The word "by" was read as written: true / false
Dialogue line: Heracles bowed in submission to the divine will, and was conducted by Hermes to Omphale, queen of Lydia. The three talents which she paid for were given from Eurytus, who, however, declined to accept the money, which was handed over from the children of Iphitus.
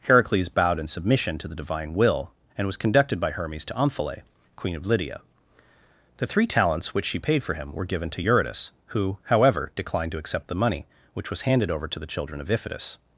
true